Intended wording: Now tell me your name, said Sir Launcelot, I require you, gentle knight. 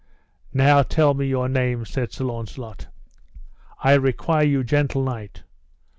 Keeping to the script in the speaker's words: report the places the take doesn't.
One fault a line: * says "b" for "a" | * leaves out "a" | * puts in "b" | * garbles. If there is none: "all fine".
all fine